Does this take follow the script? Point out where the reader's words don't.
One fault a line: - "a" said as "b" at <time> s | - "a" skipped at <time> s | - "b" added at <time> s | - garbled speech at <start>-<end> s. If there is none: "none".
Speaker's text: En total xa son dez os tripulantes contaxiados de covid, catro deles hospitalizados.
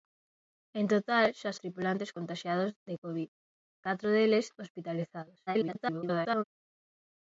- "son dez os" skipped at 1.5 s
- garbled speech at 5.5-6.4 s